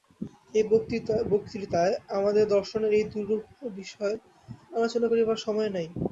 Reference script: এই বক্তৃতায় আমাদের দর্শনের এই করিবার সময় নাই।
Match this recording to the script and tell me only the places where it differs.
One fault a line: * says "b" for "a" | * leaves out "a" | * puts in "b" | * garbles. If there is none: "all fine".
* puts in "দুরূহ বিষয় আলোচনা"